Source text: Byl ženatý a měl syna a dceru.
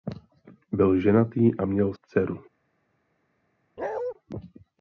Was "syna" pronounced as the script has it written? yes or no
no